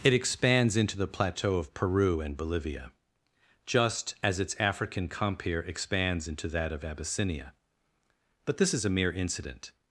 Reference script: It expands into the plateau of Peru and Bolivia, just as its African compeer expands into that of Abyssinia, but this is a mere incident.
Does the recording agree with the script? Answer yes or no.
yes